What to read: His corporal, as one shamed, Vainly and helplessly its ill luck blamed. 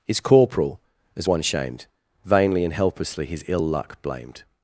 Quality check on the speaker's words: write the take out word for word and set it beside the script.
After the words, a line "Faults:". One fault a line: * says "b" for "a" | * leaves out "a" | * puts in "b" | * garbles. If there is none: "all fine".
His corporal, as one shamed, Vainly and helplessly his ill luck blamed.
Faults:
* says "his" for "its"